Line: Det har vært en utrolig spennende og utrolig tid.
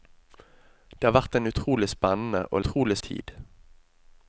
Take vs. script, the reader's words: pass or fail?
pass